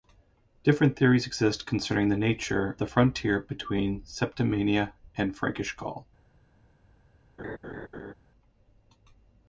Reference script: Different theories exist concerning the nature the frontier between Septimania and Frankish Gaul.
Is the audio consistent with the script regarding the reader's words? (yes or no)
yes